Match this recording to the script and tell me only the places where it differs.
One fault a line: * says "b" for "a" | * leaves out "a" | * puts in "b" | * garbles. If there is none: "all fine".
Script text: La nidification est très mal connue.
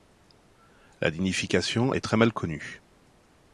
all fine